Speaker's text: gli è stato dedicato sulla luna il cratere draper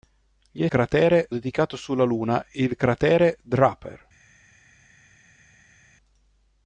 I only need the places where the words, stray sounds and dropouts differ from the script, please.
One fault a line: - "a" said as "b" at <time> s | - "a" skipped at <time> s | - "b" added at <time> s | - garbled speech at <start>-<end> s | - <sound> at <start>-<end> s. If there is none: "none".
- "stato" said as "cratere" at 0.7 s